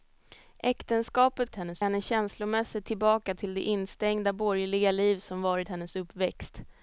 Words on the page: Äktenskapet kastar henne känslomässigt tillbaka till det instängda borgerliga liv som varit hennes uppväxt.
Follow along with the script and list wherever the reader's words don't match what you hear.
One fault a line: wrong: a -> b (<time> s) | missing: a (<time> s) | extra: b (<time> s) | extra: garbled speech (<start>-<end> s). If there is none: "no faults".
wrong: kastar -> hennes (1.5 s)